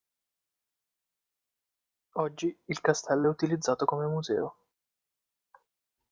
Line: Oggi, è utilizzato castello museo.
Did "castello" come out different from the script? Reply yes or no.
yes